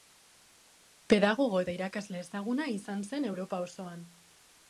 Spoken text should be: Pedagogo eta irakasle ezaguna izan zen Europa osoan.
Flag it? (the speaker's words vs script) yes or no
no